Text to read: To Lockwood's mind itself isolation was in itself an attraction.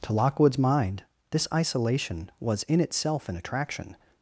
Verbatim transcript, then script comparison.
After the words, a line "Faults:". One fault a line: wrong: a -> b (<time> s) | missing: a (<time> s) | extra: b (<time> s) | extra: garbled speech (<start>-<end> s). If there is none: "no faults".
To Lockwood's mind this isolation was in itself an attraction.
Faults:
wrong: itself -> this (1.3 s)